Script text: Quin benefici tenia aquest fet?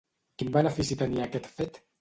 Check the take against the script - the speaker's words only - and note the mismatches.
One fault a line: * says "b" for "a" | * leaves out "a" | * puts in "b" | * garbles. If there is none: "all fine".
all fine